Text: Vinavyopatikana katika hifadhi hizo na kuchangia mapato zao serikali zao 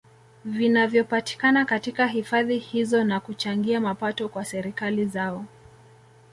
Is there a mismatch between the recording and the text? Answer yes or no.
yes